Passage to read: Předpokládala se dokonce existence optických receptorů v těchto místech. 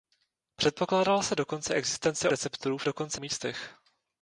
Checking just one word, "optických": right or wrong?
wrong